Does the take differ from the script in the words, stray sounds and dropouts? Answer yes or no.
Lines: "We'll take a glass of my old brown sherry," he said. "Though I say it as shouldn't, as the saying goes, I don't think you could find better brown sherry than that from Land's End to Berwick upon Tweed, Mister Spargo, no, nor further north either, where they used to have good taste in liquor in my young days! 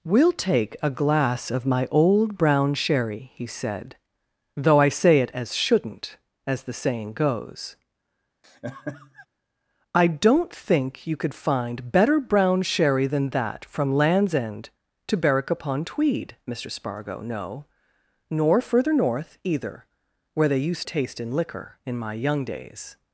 yes